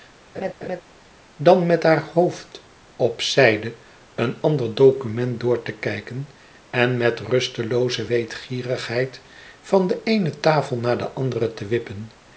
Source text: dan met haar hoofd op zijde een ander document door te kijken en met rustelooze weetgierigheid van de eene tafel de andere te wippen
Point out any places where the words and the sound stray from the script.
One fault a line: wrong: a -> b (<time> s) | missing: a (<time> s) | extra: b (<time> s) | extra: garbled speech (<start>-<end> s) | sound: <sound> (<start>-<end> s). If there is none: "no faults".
sound: laugh (0.3-0.8 s)
extra: naar (10.8 s)